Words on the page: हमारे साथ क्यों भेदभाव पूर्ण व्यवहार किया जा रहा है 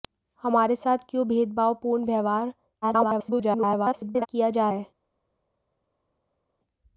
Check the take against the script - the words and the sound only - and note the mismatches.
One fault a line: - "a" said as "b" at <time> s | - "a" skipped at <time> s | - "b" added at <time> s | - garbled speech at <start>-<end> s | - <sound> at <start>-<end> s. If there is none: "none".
- garbled speech at 2.8-4.3 s
- "रहा" skipped at 4.7 s